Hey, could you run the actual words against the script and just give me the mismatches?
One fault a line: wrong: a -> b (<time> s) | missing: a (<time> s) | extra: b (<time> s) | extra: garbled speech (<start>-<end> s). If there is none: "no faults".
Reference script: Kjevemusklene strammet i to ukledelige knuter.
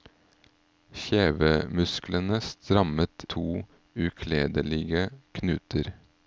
missing: i (3.2 s)